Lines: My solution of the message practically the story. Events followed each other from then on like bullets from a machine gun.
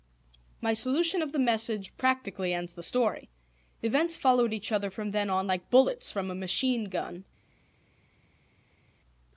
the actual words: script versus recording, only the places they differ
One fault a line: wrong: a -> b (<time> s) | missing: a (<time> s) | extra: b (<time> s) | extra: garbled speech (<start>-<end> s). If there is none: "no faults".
extra: ends (2.5 s)